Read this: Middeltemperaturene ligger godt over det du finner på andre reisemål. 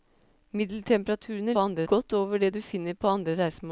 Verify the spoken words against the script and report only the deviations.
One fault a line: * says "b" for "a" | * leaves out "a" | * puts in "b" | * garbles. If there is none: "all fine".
* says "andre" for "ligger"